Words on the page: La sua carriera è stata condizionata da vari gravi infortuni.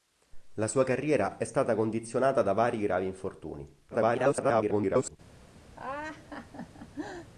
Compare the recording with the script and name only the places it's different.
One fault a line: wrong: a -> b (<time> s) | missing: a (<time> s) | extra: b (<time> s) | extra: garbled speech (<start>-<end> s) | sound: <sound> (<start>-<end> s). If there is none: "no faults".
extra: garbled speech (3.9-5.2 s)
sound: laugh (5.8-7.3 s)